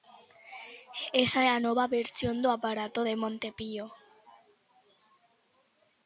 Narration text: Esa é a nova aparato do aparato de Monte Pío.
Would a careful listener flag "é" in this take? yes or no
no